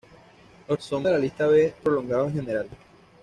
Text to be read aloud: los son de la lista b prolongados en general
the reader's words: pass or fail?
pass